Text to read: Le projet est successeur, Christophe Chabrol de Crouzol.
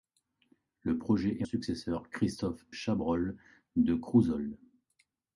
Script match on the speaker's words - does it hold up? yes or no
yes